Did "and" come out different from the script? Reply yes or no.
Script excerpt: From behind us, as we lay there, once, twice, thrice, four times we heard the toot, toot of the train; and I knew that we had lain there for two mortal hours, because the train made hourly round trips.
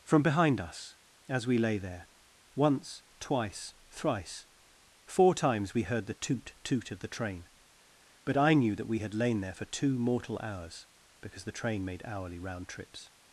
yes